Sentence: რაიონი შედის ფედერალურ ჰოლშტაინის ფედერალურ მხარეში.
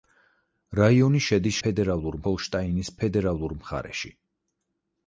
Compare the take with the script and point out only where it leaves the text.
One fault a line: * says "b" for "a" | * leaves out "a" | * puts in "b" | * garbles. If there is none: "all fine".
all fine